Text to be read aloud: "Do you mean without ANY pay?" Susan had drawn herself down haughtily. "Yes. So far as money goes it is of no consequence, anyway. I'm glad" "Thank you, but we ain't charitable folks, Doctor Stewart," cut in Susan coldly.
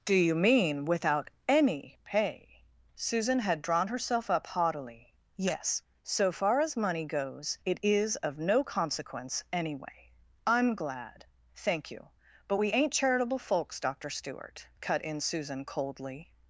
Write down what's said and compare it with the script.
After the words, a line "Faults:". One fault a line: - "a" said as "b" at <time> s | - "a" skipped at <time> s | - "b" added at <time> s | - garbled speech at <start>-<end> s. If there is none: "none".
"Do you mean without ANY pay?" Susan had drawn herself up haughtily. "Yes. So far as money goes it is of no consequence, anyway. I'm glad" "Thank you, but we ain't charitable folks, Doctor Stewart," cut in Susan coldly.
Faults:
- "down" said as "up" at 4.3 s